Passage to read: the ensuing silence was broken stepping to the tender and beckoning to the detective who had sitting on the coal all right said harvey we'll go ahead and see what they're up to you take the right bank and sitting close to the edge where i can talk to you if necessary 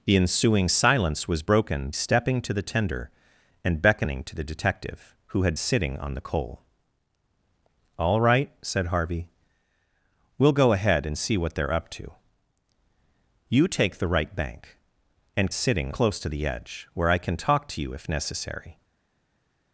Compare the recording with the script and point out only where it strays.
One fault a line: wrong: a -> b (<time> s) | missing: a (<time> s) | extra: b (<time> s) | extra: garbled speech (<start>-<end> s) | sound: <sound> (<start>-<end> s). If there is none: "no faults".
no faults